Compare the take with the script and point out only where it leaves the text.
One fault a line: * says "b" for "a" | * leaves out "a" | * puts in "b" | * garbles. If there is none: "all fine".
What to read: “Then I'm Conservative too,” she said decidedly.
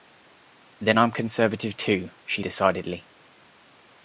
* leaves out "said"